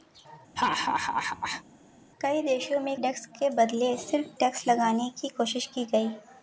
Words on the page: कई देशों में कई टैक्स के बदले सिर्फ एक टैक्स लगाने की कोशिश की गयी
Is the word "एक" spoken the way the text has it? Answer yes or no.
no